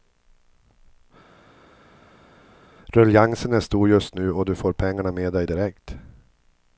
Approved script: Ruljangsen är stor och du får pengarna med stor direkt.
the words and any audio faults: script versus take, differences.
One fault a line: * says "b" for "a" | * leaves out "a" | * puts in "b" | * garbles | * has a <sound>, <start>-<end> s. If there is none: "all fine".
* puts in "just nu"
* says "dig" for "stor"